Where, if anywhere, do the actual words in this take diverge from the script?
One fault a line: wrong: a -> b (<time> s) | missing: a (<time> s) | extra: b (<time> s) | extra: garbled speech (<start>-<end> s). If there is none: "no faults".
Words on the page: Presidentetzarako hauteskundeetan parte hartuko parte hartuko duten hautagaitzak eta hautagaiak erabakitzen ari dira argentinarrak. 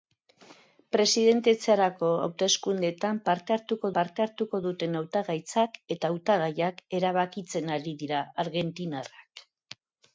no faults